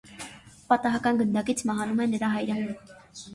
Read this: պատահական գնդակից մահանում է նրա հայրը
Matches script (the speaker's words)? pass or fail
pass